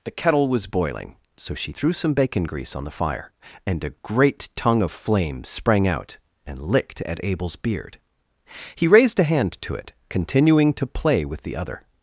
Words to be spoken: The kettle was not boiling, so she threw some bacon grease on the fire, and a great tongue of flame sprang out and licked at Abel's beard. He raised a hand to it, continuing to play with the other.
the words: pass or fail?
fail